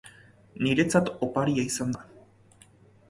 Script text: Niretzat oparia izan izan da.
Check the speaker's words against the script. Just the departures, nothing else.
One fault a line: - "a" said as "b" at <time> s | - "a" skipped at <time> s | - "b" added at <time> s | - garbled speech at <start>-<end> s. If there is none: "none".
- "izan" skipped at 1.9 s